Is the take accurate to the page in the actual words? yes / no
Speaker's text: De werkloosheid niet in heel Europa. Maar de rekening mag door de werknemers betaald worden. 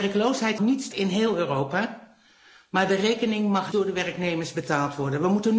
yes